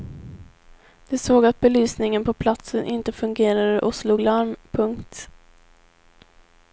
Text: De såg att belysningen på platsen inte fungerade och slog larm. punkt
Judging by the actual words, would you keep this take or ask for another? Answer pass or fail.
pass